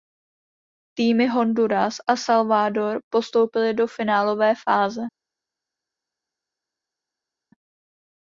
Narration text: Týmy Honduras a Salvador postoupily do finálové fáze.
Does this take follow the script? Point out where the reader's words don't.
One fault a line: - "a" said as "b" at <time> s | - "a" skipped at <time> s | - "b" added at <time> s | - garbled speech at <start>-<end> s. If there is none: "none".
none